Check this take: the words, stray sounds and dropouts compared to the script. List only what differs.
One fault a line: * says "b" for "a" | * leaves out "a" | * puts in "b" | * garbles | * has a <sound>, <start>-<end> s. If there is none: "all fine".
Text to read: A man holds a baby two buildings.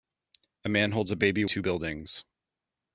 all fine